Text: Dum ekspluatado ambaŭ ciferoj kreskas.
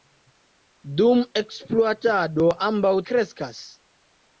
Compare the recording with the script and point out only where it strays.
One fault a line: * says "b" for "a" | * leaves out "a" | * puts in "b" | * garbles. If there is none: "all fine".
* leaves out "ciferoj"